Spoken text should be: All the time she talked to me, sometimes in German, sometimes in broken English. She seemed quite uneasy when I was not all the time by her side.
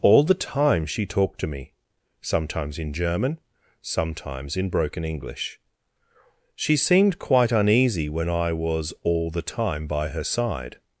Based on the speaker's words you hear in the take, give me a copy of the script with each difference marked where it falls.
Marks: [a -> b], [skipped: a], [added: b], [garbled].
All the time she talked to me, sometimes in German, sometimes in broken English. She seemed quite uneasy when I was [skipped: not] all the time by her side.